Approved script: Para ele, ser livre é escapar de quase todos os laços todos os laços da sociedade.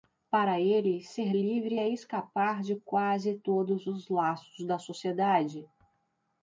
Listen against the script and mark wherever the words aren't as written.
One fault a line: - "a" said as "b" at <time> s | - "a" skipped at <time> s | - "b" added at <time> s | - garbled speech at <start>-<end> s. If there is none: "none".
- "todos os laços" skipped at 4.6 s